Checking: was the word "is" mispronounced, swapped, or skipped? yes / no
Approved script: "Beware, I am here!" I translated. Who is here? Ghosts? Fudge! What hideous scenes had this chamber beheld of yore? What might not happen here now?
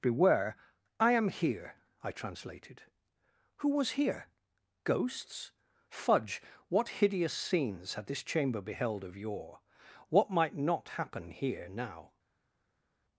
yes